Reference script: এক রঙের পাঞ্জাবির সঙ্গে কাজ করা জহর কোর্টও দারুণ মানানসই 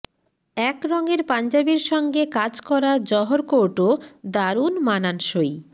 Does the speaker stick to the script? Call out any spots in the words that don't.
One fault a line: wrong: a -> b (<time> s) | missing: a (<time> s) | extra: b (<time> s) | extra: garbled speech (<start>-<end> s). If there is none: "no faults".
no faults